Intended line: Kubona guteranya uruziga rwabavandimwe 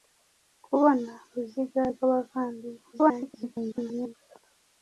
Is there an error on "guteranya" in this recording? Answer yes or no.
yes